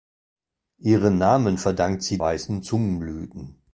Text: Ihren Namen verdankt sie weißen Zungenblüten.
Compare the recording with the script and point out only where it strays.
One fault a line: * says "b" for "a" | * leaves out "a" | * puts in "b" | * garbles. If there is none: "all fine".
all fine